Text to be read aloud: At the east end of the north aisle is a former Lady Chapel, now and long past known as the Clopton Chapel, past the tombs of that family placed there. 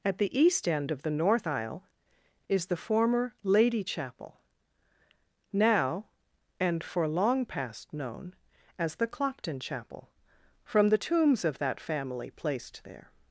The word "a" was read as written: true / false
false